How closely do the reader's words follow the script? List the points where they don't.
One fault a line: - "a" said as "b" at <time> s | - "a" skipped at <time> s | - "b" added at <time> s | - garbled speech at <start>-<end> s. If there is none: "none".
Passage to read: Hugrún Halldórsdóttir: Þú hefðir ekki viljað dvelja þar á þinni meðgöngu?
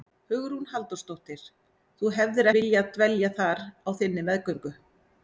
- "ekki" skipped at 2.5 s